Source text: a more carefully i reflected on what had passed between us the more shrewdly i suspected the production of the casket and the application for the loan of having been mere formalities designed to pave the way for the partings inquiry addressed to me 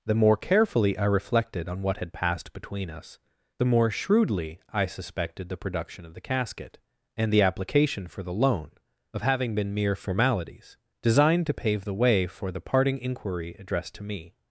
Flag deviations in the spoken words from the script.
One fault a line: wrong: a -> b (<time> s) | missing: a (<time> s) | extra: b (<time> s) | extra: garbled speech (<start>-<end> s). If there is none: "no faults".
wrong: a -> the (0.0 s)
wrong: partings -> parting (12.6 s)